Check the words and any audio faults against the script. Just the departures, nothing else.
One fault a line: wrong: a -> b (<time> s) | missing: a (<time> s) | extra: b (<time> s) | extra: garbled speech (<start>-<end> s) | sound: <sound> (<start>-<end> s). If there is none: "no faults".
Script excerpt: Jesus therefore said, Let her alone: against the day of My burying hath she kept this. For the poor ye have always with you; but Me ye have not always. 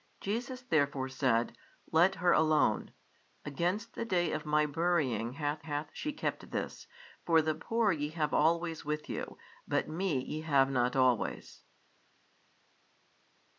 extra: hath (5.6 s)